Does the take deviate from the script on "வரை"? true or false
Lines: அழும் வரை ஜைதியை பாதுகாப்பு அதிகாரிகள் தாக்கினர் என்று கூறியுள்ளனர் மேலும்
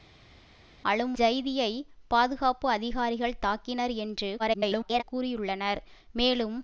true